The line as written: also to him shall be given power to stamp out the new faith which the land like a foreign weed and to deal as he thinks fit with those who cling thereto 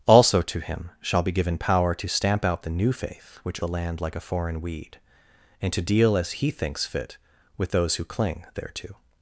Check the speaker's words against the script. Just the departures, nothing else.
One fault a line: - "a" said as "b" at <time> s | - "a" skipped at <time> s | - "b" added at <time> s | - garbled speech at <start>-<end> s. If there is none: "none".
none